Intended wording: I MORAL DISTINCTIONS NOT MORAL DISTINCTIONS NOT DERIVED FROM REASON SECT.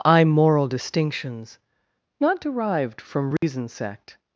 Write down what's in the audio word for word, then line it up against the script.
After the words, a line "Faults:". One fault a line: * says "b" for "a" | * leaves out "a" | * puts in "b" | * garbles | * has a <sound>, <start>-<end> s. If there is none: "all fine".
I MORAL DISTINCTIONS NOT DERIVED FROM REASON SECT.
Faults:
* leaves out "MORAL DISTINCTIONS NOT"
* has a dropout, 3.4-3.4 s